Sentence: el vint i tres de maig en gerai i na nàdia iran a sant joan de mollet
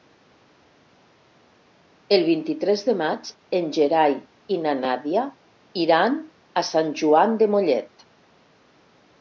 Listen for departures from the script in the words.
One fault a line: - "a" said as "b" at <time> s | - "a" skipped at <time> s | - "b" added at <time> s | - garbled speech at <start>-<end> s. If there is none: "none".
none